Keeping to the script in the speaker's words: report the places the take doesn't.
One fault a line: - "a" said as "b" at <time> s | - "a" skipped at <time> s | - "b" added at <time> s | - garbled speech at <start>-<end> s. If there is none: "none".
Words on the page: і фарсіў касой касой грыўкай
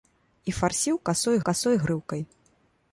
none